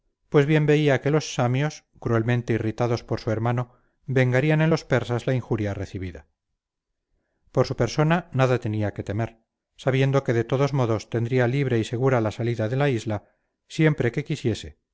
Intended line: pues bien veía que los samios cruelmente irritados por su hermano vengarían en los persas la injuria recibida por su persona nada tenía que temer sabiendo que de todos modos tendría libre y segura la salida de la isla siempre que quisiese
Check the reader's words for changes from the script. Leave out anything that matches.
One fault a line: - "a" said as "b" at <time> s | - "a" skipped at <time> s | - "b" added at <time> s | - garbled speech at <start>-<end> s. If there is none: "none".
none